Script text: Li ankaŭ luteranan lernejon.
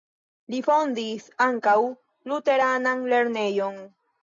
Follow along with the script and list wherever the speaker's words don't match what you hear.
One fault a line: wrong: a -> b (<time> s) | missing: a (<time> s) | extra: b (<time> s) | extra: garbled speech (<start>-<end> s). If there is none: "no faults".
extra: fondis (0.7 s)